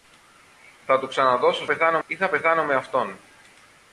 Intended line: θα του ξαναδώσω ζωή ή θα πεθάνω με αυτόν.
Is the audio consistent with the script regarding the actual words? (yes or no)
no